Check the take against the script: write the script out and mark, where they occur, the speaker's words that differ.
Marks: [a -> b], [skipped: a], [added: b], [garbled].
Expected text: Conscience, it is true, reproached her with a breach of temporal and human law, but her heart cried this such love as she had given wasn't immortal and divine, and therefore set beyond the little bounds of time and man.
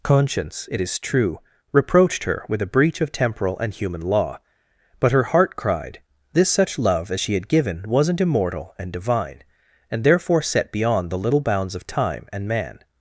Conscience, it is true, reproached her with a breach of temporal and human law, but her heart cried this such love as she had given wasn't immortal and divine, and therefore set beyond the little bounds of time and man.